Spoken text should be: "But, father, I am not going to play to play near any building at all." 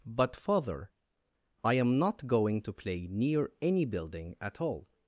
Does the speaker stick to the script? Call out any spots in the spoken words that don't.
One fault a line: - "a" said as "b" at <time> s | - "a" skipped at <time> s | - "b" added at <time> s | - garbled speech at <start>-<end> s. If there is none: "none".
- "to play" skipped at 3.1 s